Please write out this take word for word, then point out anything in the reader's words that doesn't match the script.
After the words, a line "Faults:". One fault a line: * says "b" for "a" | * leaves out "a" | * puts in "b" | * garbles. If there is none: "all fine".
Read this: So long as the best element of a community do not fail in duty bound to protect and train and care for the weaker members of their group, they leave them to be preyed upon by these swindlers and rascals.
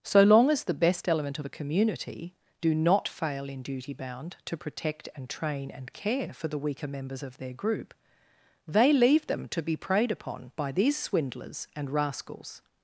So long as the best element of a community do not fail in duty bound to protect and train and care for the weaker members of their group, they leave them to be preyed upon by these swindlers and rascals.
Faults:
all fine